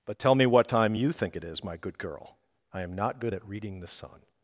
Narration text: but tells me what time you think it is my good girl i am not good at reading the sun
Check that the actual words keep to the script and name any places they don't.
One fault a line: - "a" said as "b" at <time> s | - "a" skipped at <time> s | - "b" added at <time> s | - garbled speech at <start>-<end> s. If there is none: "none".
- "tells" said as "tell" at 0.2 s